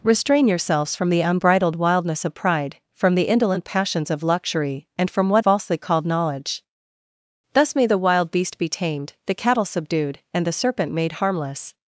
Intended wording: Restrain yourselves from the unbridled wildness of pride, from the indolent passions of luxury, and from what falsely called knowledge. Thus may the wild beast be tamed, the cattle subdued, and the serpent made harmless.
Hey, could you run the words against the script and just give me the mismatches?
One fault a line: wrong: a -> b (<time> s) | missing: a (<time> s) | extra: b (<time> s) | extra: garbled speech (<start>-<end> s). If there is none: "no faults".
no faults